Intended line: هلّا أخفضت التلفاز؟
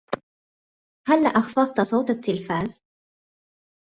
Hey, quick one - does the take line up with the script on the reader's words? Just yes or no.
no